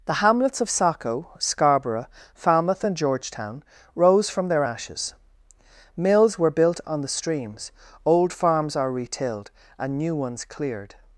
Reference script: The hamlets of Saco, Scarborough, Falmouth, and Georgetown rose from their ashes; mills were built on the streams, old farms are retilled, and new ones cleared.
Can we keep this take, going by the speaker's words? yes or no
yes